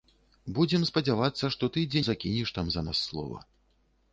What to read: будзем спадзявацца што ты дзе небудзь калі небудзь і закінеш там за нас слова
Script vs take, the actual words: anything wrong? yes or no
yes